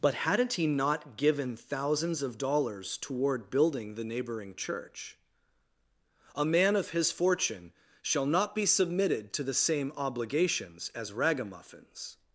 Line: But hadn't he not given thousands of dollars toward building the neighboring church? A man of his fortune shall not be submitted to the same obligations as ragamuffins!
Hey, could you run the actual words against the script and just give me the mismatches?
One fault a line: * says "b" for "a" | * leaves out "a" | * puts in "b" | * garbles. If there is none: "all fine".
all fine